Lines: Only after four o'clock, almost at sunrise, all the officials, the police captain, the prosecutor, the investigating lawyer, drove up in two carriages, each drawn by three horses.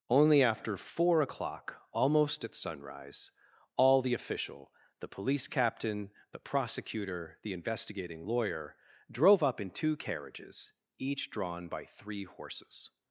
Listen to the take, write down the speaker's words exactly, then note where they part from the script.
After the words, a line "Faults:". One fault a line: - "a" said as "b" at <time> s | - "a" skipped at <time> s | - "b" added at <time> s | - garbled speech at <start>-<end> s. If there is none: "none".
Only after four o'clock, almost at sunrise, all the official, the police captain, the prosecutor, the investigating lawyer, drove up in two carriages, each drawn by three horses.
Faults:
- "officials" said as "official" at 4.1 s